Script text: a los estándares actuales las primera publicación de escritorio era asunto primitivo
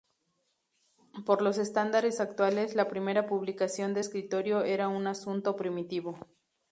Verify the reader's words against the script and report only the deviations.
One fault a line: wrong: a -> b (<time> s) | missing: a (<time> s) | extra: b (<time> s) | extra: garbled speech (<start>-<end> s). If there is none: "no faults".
wrong: a -> por (1.3 s)
wrong: las -> la (2.7 s)
extra: un (4.9 s)